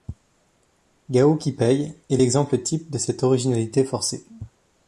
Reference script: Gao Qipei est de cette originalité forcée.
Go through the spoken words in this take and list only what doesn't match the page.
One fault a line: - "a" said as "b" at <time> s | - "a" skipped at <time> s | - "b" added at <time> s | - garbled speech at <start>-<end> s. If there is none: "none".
- "l'exemple type" added at 2.1 s